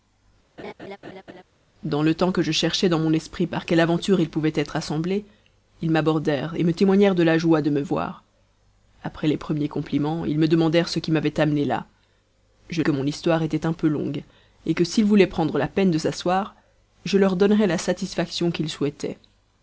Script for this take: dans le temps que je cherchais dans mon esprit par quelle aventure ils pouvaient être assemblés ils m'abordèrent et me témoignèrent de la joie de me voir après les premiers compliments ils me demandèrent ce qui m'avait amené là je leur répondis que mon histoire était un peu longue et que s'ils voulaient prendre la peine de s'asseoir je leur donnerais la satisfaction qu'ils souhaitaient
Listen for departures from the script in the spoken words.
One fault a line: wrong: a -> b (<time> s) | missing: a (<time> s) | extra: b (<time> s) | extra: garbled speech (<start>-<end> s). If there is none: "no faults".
missing: leur répondis (12.8 s)